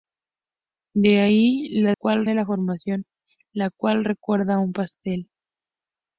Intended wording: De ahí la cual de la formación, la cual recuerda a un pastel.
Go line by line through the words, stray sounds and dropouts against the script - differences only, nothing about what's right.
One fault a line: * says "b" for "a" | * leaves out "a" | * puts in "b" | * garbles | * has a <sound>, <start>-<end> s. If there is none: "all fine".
all fine